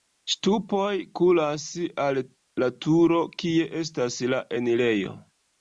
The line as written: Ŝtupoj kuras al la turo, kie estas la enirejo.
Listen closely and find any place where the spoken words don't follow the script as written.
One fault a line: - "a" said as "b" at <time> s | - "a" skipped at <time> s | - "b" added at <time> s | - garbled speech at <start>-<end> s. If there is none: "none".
none